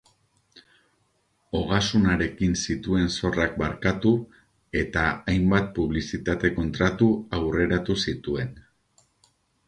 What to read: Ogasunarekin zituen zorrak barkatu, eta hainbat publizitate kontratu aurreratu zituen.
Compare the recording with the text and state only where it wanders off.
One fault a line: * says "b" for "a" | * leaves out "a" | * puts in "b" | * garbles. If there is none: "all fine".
all fine